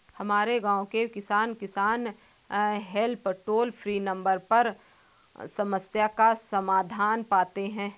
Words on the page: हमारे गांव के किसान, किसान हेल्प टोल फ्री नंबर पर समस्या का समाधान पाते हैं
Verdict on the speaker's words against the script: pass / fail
pass